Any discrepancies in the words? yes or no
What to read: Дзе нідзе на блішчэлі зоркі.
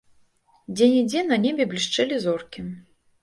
yes